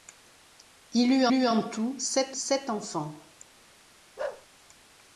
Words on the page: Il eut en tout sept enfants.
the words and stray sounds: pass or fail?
fail